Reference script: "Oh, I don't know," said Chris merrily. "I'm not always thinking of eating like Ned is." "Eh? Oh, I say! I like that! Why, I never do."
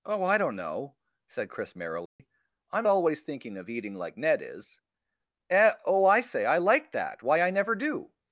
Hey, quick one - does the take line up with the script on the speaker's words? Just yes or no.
no